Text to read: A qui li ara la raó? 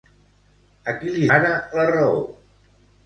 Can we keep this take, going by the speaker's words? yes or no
yes